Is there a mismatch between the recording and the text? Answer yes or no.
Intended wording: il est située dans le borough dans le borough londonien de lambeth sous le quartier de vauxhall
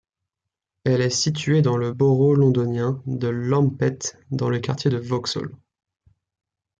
yes